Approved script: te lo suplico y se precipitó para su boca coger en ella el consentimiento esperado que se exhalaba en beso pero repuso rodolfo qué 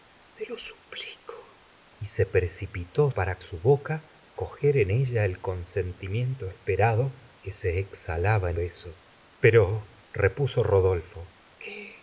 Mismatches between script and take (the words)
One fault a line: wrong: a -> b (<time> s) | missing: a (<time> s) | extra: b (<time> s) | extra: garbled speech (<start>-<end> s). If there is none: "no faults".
no faults